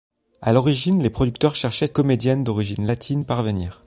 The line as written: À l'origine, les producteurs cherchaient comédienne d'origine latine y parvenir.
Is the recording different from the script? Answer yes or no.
no